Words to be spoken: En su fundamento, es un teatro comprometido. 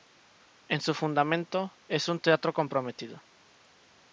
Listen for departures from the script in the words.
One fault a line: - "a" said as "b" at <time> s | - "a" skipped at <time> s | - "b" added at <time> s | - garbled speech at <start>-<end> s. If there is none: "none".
none